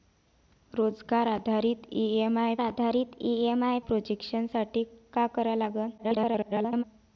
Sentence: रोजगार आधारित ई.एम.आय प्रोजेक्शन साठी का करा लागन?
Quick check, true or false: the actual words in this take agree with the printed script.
false